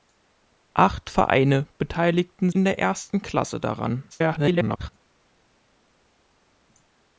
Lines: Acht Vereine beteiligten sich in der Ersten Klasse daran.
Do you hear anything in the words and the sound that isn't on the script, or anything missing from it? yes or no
yes